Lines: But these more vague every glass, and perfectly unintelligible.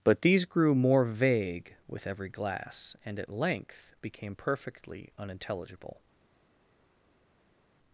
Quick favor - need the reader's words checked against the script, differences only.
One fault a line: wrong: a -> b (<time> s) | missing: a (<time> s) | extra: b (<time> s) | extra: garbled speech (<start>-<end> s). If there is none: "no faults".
extra: grew (0.5 s)
extra: with (1.9 s)
extra: at length became (3.2 s)